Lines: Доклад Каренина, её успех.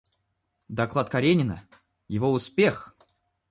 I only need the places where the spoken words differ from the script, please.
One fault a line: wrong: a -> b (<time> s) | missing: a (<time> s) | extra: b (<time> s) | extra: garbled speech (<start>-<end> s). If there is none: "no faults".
wrong: её -> его (2.1 s)